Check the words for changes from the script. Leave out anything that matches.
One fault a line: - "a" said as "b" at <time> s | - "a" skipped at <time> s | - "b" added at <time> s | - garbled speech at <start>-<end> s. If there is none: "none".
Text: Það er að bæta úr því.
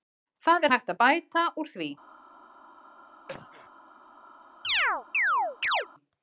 - "hægt" added at 0.7 s